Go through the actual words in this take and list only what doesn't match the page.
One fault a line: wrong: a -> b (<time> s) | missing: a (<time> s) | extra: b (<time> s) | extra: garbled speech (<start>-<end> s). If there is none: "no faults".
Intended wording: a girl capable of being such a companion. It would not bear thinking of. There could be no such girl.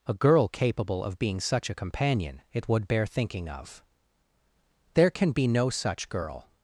missing: not (2.9 s)
wrong: could -> can (5.1 s)